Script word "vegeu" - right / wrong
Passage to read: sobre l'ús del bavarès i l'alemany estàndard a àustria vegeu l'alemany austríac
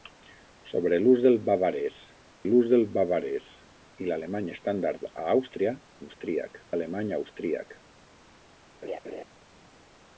wrong